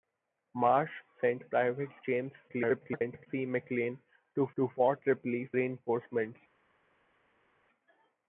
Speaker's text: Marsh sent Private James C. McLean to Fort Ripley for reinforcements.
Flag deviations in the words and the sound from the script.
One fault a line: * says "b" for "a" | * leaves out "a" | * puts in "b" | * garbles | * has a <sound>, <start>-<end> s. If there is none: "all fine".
* garbles
* puts in "to"
* leaves out "for"